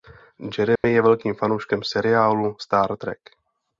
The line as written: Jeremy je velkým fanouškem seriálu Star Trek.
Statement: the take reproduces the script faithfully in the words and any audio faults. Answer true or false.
false